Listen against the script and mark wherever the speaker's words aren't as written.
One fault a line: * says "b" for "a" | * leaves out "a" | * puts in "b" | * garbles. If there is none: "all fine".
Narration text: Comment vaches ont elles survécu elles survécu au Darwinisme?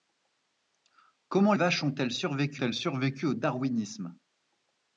all fine